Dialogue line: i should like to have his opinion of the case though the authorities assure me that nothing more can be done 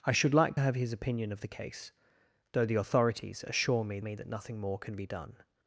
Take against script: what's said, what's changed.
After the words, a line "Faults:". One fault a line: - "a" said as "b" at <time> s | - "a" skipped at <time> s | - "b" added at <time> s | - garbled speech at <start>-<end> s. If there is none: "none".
i should like have his opinion of the case though the authorities assure me me that nothing more can be done
Faults:
- "to" skipped at 0.6 s
- "me" added at 4.0 s